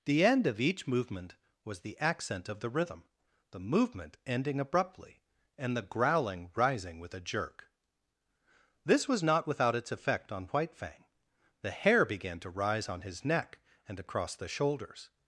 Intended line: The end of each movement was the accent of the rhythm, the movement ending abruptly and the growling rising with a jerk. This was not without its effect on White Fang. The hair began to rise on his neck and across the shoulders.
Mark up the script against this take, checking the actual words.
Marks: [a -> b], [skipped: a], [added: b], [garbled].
The end of each movement was the accent of the rhythm, the movement ending abruptly and the growling rising with a jerk. This was not without its effect on White Fang. The hair began to rise on his neck and across the shoulders.